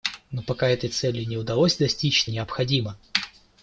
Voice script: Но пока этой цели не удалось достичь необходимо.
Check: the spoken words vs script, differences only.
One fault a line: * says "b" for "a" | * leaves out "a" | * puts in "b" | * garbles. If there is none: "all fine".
all fine